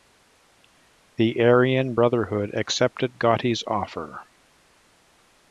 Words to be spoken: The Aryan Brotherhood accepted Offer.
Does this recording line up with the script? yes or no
no